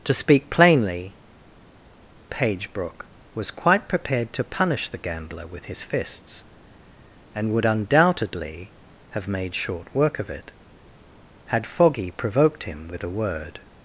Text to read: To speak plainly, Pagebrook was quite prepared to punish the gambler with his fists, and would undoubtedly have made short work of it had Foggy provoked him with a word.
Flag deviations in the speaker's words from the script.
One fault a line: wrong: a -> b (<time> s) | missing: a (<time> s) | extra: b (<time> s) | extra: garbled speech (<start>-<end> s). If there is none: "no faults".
no faults